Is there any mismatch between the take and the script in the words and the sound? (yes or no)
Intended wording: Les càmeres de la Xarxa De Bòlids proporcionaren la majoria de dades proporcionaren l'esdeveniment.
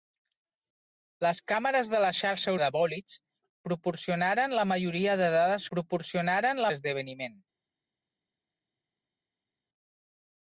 no